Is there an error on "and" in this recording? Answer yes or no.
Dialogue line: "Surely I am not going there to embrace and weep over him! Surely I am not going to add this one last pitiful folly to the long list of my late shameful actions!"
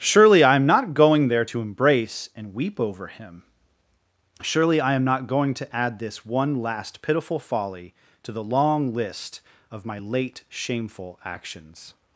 no